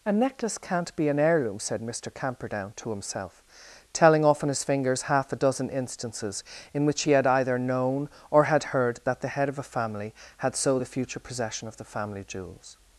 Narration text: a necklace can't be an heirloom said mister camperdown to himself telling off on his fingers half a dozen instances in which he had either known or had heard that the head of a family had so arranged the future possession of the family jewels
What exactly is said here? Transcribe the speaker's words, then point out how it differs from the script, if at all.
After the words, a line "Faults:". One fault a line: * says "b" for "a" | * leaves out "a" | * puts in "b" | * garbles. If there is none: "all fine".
a necklace can't be an heirloom said mister camperdown to himself telling off on his fingers half a dozen instances in which he had either known or had heard that the head of a family had so the future possession of the family jewels
Faults:
* leaves out "arranged"